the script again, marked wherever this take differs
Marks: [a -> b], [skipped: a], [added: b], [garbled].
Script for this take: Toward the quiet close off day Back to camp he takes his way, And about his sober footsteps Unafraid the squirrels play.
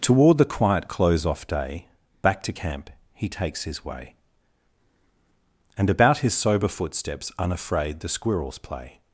Toward the quiet close off day Back to camp he takes his way, And about his sober footsteps Unafraid the squirrels play.